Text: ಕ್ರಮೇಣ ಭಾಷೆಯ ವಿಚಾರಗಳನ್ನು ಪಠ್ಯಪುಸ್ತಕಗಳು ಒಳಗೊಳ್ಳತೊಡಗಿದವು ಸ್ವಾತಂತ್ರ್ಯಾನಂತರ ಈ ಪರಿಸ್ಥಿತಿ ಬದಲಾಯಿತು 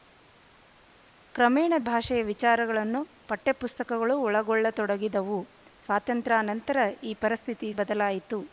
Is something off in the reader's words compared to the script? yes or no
no